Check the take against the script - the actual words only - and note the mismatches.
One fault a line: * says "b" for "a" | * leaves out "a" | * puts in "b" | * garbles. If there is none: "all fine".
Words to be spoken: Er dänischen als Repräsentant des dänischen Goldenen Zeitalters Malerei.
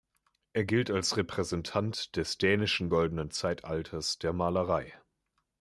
* says "gilt" for "dänischen"
* puts in "der"